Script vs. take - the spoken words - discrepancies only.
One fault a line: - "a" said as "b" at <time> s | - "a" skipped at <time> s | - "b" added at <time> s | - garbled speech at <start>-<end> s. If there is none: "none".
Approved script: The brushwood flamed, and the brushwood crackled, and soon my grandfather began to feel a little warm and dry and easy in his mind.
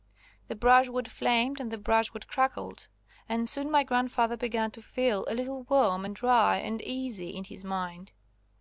none